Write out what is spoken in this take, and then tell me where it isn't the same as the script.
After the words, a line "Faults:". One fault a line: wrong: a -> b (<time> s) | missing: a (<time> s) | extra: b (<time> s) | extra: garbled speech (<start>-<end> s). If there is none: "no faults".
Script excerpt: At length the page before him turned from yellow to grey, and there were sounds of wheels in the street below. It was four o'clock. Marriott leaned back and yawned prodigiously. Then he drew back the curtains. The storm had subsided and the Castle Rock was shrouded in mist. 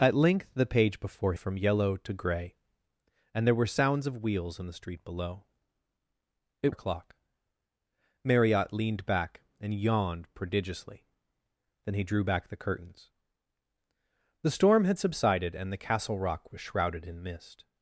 At length the page before from yellow to grey, and there were sounds of wheels in the street below. It o'clock. Marriott leaned back and yawned prodigiously. Then he drew back the curtains. The storm had subsided and the Castle Rock was shrouded in mist.
Faults:
missing: him turned (1.4 s)
missing: was four (6.7 s)